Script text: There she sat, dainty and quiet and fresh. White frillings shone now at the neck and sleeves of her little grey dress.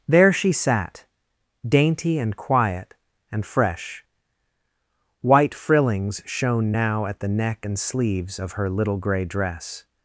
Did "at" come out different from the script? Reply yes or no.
no